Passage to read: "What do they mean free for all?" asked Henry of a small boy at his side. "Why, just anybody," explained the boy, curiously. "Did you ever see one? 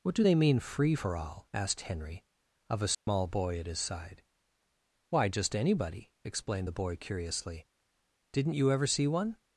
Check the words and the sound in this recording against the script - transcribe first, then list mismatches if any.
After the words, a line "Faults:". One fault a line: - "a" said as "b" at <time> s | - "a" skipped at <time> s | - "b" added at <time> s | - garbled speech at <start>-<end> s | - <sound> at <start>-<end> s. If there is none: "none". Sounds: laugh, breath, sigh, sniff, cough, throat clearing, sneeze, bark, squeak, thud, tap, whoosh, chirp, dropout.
"What do they mean free for all?" asked Henry of a small boy at his side. "Why, just anybody," explained the boy, curiously. "Didn't you ever see one?
Faults:
- dropout at 2.9-3.1 s
- "Did" said as "Didn't" at 8.3 s